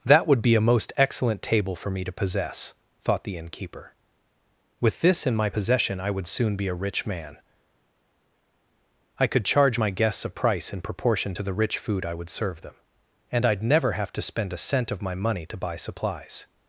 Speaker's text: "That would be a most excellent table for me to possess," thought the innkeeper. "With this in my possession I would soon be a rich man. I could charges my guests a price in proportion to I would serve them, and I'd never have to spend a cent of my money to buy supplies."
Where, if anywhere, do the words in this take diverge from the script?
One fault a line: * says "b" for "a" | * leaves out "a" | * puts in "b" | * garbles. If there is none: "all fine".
* says "charge" for "charges"
* puts in "the rich food"